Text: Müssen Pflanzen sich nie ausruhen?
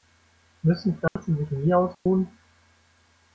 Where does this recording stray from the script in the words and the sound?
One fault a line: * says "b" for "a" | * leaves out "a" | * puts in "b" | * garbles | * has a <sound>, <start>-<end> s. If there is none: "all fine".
* has a dropout, 1.1-1.2 s
* has a dropout, 1.9-2.1 s